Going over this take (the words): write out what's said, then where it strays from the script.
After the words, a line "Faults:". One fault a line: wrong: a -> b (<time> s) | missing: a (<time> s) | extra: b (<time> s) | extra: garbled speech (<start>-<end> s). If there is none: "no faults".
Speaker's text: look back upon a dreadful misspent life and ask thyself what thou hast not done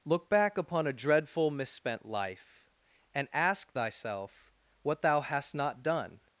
look back upon a dreadful misspent life and ask thyself what thou hast not done
Faults:
no faults